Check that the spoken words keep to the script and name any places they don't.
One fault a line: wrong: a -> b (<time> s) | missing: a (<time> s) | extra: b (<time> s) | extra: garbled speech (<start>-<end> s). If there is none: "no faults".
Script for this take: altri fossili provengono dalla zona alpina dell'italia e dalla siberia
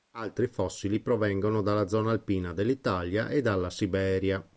no faults